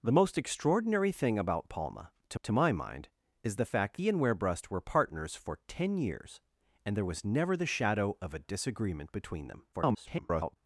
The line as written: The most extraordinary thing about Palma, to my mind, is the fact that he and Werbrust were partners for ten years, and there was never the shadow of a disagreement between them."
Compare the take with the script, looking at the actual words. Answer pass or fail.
fail